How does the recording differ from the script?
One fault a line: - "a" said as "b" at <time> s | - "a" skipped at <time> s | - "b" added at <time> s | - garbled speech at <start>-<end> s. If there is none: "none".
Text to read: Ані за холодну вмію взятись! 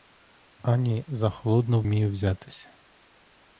none